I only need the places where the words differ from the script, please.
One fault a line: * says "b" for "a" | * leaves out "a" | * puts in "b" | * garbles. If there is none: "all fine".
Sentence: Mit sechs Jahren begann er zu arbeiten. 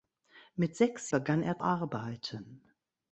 * leaves out "Jahren"
* leaves out "zu"